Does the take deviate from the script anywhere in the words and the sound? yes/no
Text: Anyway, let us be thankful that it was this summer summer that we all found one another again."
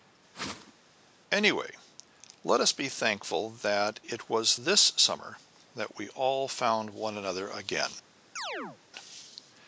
yes